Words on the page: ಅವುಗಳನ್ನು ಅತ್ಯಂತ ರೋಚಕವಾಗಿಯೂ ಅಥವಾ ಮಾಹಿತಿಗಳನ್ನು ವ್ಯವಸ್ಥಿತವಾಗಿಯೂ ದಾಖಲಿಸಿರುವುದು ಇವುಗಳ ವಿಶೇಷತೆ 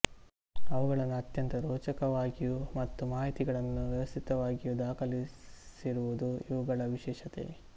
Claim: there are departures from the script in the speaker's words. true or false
true